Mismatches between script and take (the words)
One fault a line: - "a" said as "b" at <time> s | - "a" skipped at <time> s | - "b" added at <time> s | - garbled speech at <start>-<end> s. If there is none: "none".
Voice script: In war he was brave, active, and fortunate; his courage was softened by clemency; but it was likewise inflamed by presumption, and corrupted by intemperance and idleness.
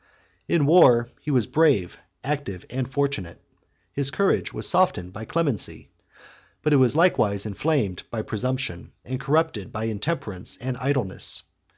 none